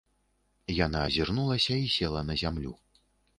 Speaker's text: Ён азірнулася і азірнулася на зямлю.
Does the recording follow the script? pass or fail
fail